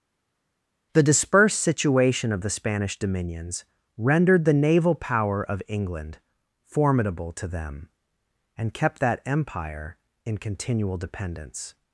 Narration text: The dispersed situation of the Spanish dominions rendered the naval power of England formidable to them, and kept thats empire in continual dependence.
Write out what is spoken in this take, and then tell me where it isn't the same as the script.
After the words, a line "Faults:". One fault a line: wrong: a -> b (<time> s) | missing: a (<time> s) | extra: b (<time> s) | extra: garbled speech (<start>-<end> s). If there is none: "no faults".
The dispersed situation of the Spanish dominions rendered the naval power of England formidable to them, and kept that empire in continual dependence.
Faults:
wrong: thats -> that (9.0 s)